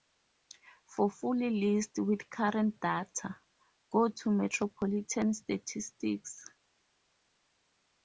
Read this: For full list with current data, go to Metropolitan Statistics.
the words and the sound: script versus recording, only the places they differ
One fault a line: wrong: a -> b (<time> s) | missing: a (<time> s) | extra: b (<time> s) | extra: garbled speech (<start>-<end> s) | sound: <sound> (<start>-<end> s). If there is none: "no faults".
no faults